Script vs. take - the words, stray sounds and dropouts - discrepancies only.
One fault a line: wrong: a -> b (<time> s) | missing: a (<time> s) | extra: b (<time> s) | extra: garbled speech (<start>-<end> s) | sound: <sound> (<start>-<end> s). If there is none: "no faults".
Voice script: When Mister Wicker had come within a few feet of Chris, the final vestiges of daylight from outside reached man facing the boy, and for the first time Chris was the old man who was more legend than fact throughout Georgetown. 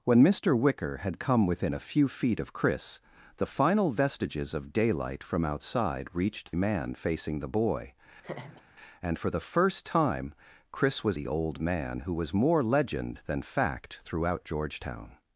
sound: laugh (8.2-8.6 s)